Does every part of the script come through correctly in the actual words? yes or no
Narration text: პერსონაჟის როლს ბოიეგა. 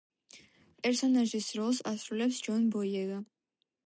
no